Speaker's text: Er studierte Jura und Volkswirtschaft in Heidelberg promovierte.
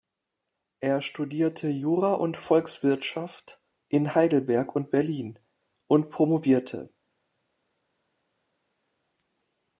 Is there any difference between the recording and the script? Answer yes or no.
yes